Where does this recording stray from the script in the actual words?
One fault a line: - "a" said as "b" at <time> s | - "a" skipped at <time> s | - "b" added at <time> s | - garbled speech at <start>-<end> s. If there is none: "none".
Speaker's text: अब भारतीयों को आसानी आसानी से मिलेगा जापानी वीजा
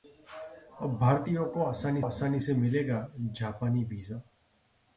none